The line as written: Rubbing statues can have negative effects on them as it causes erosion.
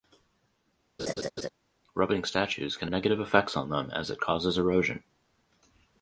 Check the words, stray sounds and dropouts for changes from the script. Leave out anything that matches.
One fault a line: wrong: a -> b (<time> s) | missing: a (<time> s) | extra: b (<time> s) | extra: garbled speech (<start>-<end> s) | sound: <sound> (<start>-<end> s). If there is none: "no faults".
sound: laugh (1.0-1.5 s)
missing: have (2.9 s)